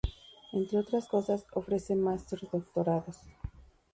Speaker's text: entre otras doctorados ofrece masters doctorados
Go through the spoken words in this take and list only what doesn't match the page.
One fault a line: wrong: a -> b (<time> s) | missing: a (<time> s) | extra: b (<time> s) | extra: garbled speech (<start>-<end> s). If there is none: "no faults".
wrong: doctorados -> cosas (1.0 s)